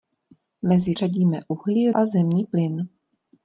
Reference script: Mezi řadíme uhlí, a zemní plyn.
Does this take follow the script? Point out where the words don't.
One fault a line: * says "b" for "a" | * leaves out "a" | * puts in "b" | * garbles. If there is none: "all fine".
all fine